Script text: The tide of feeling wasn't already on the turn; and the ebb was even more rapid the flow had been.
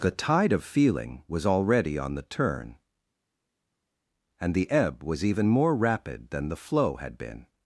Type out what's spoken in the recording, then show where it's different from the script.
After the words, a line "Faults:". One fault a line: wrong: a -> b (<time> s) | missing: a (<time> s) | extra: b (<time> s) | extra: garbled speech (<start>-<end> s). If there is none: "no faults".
The tide of feeling was already on the turn; and the ebb was even more rapid than the flow had been.
Faults:
wrong: wasn't -> was (1.3 s)
extra: than (6.3 s)